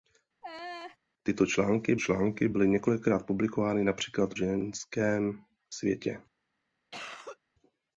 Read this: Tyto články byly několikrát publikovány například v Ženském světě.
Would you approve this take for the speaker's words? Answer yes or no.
no